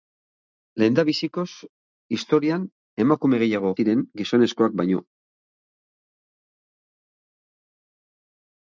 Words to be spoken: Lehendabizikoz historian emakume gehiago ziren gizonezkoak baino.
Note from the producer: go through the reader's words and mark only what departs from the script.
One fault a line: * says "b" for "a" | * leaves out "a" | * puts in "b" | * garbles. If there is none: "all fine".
all fine